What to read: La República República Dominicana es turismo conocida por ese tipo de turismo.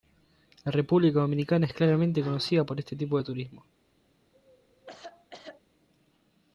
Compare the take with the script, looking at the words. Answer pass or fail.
fail